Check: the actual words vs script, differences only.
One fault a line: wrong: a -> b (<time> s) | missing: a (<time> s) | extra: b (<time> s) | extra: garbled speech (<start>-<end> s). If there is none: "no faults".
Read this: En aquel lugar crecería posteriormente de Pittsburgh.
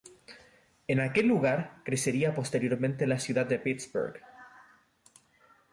extra: la ciudad (3.0 s)